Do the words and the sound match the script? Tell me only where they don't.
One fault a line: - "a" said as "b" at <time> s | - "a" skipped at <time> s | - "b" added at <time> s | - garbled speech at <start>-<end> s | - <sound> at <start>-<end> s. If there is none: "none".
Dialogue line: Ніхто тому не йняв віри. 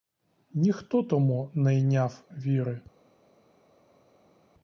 none